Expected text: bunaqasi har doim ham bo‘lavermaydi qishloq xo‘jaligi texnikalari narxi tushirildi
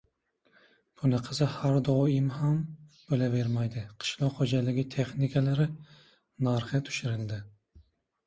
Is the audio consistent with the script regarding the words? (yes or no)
yes